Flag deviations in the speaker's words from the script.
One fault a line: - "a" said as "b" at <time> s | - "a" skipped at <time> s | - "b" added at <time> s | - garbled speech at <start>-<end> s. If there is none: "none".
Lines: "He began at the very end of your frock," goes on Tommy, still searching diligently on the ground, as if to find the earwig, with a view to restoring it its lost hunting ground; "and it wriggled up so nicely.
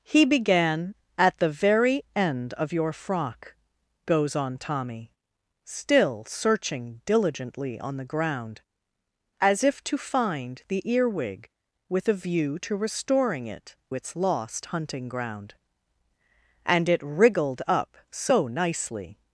none